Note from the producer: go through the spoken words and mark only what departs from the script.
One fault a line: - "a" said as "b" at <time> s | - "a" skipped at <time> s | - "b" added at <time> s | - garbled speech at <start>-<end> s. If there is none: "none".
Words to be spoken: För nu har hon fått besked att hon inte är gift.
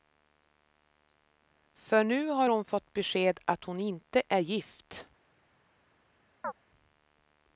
none